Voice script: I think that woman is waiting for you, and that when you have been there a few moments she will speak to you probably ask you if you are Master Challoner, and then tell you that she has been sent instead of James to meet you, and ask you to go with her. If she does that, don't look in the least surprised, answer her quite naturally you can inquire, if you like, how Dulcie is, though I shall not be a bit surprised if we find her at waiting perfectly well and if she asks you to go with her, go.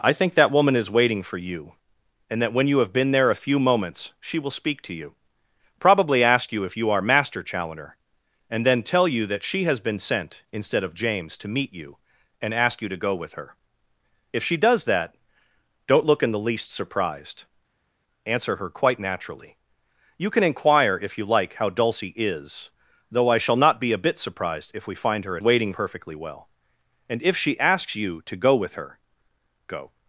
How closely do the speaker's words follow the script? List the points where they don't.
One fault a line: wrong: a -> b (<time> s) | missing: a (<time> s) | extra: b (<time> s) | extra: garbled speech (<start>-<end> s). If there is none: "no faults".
no faults